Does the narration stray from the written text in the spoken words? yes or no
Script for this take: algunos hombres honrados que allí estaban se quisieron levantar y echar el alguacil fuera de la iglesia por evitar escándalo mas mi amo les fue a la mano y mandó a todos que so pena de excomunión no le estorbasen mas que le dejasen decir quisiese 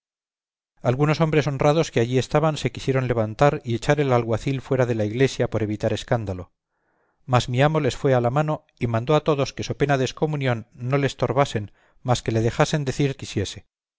no